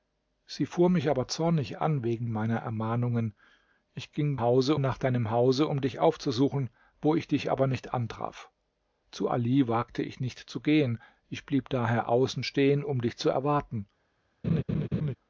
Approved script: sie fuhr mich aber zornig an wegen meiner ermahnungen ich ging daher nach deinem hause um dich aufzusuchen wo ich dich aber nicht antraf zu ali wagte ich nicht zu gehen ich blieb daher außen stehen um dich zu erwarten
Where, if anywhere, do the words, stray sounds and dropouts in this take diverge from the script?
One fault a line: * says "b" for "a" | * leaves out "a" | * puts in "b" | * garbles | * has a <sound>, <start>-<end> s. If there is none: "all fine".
* says "hause" for "daher"
* has a laugh, 14.4-15.1 s